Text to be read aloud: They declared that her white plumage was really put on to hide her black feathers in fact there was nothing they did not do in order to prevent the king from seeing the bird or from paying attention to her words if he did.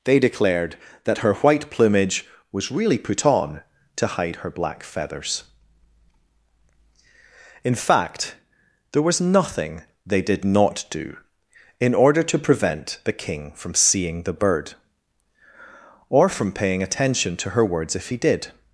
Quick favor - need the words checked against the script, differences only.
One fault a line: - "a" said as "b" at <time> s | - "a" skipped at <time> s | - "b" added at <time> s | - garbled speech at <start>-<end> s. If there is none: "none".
none